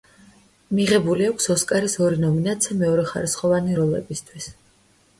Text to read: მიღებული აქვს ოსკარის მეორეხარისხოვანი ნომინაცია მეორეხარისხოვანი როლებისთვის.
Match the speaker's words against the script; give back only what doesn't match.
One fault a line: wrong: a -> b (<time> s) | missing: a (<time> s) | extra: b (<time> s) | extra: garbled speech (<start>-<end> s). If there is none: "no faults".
wrong: მეორეხარისხოვანი -> ორი (2.0 s)